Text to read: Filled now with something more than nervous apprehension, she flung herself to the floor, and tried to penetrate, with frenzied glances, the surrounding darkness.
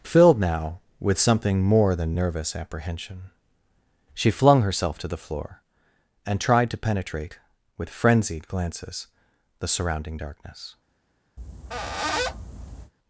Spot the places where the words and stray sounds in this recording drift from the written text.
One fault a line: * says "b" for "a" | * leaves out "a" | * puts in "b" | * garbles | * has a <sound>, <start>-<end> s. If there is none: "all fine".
* has a squeak, 11.4-12.9 s